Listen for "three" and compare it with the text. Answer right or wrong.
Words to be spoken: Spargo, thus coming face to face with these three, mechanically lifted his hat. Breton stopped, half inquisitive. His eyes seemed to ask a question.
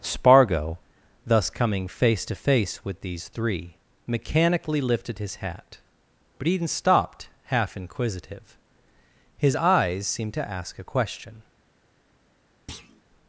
right